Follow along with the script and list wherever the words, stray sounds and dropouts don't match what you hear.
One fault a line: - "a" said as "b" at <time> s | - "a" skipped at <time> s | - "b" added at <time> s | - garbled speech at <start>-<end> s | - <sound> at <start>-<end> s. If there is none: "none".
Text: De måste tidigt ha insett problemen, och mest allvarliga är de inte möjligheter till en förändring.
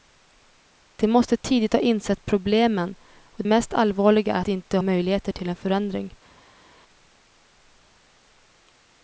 none